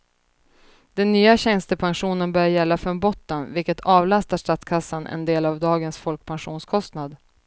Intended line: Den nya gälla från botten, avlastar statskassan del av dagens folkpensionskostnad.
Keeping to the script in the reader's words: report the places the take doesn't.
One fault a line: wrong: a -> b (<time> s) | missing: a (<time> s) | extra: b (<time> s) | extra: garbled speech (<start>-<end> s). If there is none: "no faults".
extra: tjänstepensionen börjar (1.4 s)
extra: vilket (3.5 s)
extra: en (5.1 s)